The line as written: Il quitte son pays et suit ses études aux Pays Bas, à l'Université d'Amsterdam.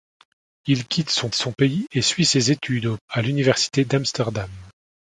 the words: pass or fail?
fail